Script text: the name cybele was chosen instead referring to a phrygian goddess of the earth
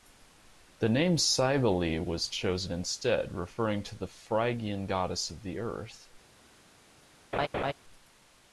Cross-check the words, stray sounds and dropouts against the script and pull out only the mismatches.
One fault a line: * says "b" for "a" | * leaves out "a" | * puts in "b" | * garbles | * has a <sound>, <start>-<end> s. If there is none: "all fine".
* says "the" for "a"
* has a laugh, 7.3-7.7 s